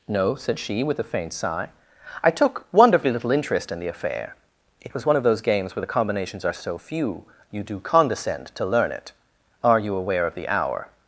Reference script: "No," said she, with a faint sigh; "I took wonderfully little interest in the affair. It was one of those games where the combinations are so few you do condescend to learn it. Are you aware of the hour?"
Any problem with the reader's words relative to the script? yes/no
no